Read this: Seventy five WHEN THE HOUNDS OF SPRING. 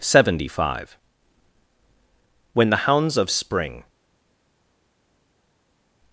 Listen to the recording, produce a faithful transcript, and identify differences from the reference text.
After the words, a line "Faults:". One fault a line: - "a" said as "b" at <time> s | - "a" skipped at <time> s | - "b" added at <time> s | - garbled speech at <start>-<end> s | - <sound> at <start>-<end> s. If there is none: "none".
Seventy five WHEN THE HOUNDS OF SPRING.
Faults:
none